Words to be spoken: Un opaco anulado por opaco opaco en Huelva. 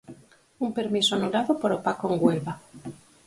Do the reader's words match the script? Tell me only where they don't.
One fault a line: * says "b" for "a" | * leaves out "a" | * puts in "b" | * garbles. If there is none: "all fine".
* says "permiso" for "opaco"
* leaves out "opaco"